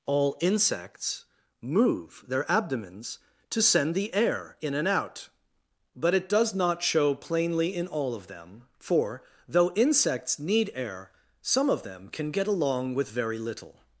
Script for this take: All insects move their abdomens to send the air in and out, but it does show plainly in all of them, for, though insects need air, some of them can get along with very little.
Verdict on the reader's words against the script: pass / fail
fail